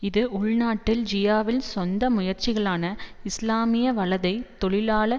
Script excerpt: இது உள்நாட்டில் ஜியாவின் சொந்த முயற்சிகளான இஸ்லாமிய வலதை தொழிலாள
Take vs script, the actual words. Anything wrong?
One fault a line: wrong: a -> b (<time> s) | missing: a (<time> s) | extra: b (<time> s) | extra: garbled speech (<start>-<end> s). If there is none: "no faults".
no faults